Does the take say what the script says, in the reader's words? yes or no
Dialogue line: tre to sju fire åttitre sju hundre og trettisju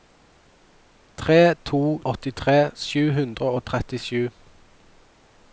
no